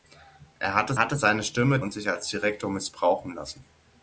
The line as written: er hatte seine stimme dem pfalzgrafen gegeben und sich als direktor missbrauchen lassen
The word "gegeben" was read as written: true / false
false